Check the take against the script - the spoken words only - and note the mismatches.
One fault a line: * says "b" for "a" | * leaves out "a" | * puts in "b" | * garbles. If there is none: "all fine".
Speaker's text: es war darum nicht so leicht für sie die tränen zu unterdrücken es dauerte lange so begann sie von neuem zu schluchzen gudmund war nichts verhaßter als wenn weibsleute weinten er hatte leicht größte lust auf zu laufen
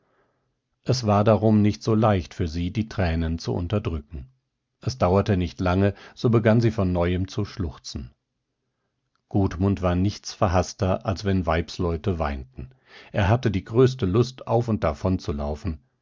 * puts in "nicht"
* says "die" for "leicht"
* puts in "und davon"